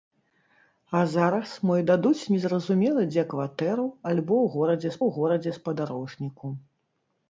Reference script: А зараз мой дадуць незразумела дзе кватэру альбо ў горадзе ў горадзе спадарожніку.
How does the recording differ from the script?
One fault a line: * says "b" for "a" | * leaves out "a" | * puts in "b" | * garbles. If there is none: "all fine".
all fine